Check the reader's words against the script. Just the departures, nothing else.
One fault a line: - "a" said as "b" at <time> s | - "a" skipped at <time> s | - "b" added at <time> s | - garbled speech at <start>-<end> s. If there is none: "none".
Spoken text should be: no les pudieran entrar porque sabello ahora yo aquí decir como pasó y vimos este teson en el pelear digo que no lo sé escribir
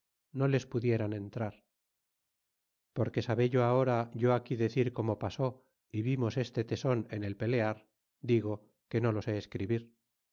none